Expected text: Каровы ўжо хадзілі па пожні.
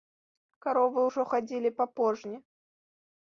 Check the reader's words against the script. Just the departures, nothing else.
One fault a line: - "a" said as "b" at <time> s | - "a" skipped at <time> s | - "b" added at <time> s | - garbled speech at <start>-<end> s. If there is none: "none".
none